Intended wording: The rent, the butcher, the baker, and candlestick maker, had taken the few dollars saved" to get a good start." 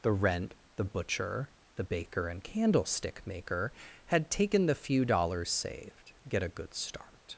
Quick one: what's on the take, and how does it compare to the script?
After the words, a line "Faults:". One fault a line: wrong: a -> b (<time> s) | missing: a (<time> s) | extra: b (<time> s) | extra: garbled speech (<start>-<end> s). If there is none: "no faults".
The rent, the butcher, the baker, and candlestick maker, had taken the few dollars saved" get a good start."
Faults:
missing: to (6.1 s)